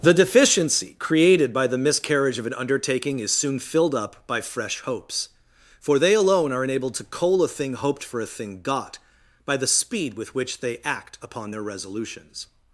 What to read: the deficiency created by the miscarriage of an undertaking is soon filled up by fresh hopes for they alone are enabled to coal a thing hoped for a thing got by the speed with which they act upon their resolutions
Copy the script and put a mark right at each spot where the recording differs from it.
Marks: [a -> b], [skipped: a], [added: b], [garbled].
the deficiency created by the miscarriage of an undertaking is soon filled up by fresh hopes for they alone are enabled to coal a thing hoped for a thing got by the speed with which they act upon their resolutions